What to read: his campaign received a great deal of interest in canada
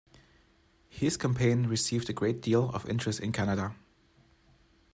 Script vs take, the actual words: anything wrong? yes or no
no